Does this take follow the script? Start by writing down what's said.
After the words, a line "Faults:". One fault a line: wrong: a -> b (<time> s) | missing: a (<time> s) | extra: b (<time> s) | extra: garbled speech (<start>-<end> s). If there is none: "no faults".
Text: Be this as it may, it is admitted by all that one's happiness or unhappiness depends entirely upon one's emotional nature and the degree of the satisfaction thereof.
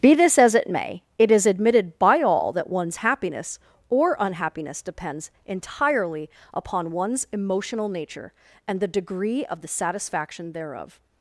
Be this as it may, it is admitted by all that one's happiness or unhappiness depends entirely upon one's emotional nature and the degree of the satisfaction thereof.
Faults:
no faults